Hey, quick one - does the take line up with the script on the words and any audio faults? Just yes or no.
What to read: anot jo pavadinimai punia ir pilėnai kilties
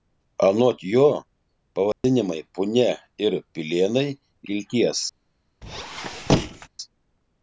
no